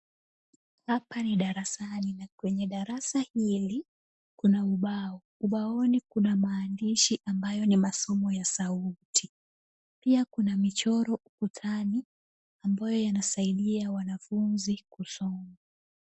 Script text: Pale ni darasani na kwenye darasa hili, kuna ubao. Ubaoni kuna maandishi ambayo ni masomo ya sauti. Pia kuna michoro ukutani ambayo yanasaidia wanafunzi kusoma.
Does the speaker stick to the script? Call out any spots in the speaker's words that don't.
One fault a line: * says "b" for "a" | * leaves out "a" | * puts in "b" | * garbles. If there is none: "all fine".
* says "Hapa" for "Pale"